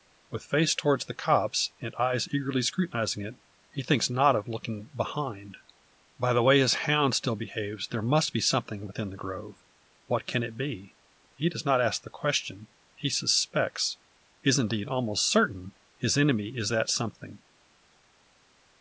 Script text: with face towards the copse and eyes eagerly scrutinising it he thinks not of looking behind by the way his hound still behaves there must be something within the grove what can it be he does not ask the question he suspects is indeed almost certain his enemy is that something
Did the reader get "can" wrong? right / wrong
right